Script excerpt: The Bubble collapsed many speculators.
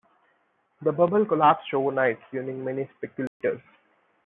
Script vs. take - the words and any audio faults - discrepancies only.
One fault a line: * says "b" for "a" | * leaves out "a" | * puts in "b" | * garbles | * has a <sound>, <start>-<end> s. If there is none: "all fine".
* puts in "overnight ruining"
* has a dropout, 3.3-3.4 s